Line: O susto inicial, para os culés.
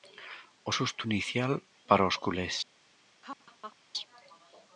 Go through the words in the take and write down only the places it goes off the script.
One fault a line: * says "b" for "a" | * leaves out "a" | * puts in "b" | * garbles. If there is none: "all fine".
all fine